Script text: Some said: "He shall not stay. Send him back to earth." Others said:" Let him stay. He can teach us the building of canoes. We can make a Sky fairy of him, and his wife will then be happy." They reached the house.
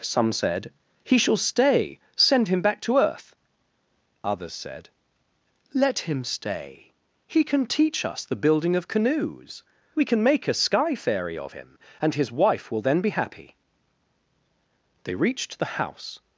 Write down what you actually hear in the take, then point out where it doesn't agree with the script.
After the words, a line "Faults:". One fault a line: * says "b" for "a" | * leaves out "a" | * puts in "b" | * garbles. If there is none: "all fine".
Some said: "He shall stay. Send him back to earth." Others said:" Let him stay. He can teach us the building of canoes. We can make a Sky fairy of him, and his wife will then be happy." They reached the house.
Faults:
* leaves out "not"